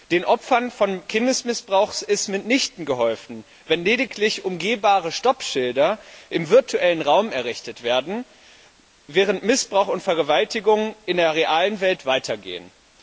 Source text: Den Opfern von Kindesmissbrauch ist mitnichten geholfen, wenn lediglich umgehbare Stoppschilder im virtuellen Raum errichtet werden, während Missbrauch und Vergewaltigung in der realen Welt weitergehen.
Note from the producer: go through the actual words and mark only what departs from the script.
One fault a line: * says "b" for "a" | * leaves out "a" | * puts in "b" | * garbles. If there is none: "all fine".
all fine